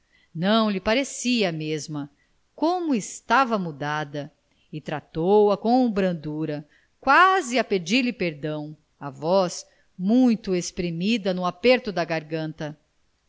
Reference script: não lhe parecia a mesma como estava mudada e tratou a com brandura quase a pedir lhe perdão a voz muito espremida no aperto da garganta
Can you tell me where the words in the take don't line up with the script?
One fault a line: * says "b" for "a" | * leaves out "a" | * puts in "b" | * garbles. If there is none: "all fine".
all fine